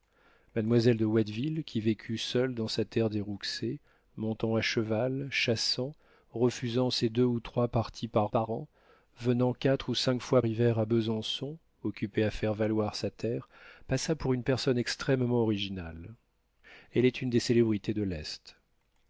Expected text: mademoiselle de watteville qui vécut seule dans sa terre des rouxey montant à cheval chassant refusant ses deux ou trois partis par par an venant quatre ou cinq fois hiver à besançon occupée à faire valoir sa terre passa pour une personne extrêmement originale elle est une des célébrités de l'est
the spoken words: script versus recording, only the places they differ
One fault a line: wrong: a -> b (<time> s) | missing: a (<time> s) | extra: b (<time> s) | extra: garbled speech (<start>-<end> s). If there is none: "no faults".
no faults